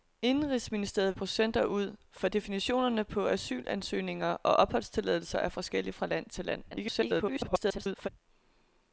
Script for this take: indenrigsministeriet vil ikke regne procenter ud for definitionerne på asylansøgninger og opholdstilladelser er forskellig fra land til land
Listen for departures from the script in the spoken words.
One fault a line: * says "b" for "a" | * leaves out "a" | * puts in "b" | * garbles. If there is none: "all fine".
* leaves out "vil ikke regne"
* garbles